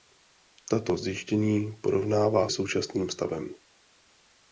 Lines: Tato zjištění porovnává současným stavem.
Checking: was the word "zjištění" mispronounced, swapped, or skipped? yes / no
no